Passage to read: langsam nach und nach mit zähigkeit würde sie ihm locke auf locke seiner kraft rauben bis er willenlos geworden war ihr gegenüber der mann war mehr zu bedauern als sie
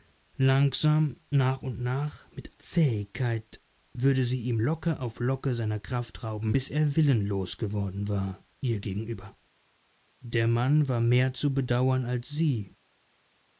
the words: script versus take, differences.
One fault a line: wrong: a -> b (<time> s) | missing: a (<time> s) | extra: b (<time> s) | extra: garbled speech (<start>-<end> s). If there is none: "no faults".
no faults